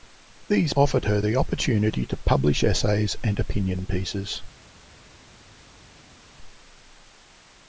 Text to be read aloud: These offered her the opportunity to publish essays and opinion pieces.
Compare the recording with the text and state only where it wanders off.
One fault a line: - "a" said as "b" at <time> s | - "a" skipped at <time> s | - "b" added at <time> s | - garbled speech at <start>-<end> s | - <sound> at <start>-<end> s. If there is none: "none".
none